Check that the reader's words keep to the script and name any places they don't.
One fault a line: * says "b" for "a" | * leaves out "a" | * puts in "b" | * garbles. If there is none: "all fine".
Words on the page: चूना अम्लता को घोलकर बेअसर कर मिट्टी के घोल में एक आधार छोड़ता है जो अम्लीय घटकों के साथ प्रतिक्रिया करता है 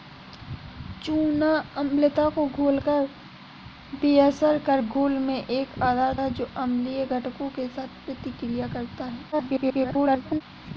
* leaves out "मिट्टी के"
* leaves out "छोड़ता"
* garbles